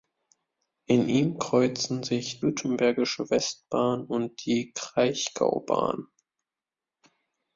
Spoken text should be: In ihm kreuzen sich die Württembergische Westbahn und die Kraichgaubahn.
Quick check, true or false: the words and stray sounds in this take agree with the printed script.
false